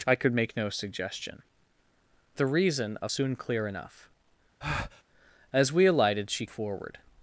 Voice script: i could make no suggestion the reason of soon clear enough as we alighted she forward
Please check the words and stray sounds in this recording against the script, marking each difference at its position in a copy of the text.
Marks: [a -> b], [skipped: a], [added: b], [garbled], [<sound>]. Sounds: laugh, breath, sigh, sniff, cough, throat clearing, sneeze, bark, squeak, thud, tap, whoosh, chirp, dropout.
i could make no suggestion the reason of soon clear enough [breath] as we alighted she forward